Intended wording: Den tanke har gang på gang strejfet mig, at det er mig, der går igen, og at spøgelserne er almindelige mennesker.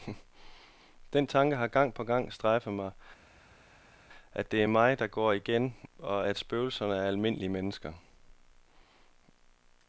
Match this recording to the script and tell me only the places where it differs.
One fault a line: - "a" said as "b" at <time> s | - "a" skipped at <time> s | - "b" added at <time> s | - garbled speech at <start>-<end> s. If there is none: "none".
none